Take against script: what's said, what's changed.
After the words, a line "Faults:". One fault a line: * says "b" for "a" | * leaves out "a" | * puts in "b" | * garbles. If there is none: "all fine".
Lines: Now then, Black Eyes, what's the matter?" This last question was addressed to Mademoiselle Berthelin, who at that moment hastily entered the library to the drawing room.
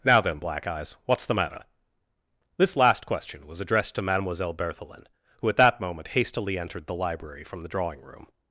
Now then, Black Eyes, what's the matter?" This last question was addressed to Mademoiselle Berthelin, who at that moment hastily entered the library from the drawing room.
Faults:
* says "from" for "to"